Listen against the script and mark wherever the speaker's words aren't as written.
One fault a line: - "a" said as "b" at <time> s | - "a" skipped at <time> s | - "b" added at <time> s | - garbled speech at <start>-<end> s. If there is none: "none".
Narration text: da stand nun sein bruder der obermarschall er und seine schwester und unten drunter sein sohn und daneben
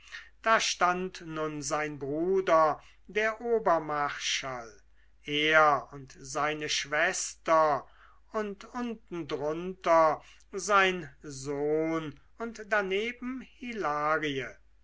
none